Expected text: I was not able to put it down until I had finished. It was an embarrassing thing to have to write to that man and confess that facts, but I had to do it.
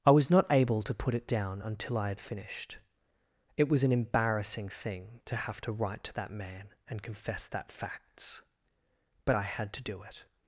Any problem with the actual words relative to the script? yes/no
no